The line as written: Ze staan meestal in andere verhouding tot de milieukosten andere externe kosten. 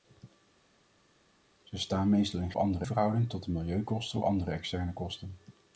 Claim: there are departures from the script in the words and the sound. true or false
false